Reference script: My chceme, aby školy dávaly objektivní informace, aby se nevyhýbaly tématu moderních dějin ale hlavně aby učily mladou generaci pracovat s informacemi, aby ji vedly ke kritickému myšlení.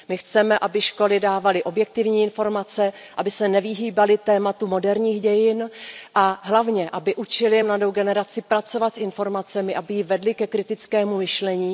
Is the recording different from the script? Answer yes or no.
yes